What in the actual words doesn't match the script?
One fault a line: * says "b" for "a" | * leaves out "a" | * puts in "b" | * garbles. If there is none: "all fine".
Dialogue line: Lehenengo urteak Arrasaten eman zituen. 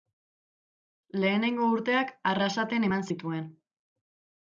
all fine